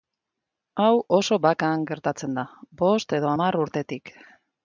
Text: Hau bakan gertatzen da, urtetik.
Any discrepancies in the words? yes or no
yes